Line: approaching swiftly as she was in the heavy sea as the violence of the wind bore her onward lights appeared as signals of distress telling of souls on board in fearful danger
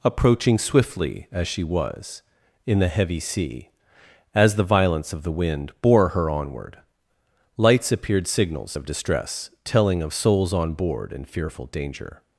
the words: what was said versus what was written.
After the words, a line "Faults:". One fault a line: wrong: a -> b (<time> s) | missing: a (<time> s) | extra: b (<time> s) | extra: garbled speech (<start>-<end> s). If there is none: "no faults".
approaching swiftly as she was in the heavy sea as the violence of the wind bore her onward lights appeared signals of distress telling of souls on board in fearful danger
Faults:
missing: as (8.3 s)